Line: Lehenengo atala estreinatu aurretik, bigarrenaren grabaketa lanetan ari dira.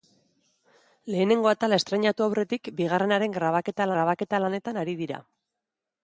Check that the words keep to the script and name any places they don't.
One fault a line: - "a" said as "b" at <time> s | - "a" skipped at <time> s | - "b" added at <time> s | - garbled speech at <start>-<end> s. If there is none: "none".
- "grabaketa" added at 3.9 s